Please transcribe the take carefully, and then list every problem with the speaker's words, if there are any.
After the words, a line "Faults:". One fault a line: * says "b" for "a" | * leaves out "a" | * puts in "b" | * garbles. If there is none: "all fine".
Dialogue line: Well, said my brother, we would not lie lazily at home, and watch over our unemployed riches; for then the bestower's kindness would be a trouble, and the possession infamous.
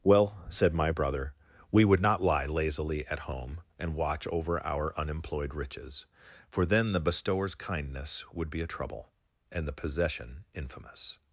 Well, said my brother, we would not lie lazily at home, and watch over our unemployed riches; for then the bestower's kindness would be a trouble, and the possession infamous.
Faults:
all fine